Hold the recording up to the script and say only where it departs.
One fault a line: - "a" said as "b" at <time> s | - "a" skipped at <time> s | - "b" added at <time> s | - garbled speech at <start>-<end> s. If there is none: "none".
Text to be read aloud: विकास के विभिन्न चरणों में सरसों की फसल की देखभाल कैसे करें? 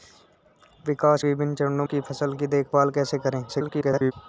- "के" skipped at 1.2 s
- "में सरसों" skipped at 1.9 s
- garbled speech at 3.5-4.1 s